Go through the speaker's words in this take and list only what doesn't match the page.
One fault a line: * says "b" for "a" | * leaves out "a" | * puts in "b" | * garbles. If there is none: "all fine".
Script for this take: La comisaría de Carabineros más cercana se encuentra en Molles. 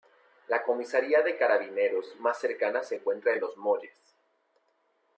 * puts in "Los"